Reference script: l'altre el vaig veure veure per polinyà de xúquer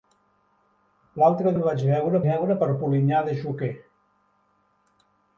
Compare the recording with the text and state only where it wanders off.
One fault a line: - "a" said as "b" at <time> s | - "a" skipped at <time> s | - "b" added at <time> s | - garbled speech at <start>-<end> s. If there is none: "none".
none